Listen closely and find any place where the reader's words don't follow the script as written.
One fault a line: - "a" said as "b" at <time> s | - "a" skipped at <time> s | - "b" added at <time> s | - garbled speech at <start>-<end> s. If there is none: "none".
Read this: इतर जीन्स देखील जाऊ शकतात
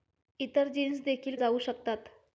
none